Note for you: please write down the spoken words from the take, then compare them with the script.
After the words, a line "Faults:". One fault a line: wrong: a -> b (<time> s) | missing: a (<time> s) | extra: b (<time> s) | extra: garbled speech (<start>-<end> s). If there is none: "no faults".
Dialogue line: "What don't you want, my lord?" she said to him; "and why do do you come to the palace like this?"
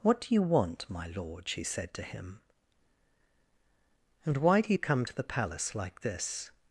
"What do you want, my lord?" she said to him; "and why do you come to the palace like this?"
Faults:
wrong: don't -> do (0.2 s)
missing: do (4.7 s)